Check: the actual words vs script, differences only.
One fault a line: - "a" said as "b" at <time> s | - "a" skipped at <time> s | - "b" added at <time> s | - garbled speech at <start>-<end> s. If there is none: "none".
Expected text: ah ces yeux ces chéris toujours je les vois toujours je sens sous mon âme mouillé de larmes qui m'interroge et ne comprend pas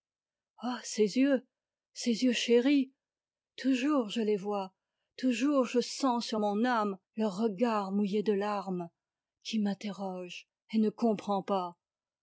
- "yeux" added at 2.2 s
- "sous" said as "sur" at 6.2 s
- "leur regard" added at 7.2 s